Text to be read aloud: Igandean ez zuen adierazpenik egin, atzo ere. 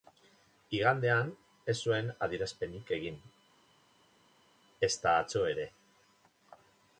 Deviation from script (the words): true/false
true